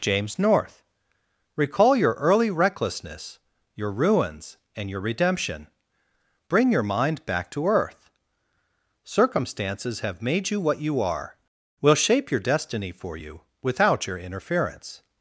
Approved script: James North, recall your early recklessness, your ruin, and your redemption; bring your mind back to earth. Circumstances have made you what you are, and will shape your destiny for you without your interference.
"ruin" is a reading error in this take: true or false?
true